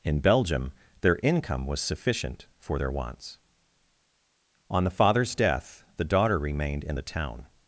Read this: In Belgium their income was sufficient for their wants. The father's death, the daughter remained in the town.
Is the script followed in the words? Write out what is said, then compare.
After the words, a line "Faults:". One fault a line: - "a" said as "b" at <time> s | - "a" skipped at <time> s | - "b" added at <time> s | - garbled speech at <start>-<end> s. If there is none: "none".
In Belgium their income was sufficient for their wants. On the father's death, the daughter remained in the town.
Faults:
- "On" added at 4.7 s